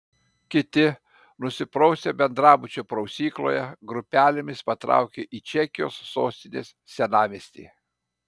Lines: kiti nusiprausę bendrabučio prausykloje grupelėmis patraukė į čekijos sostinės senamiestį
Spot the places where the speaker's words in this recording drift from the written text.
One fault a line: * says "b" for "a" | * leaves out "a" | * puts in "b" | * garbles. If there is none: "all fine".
all fine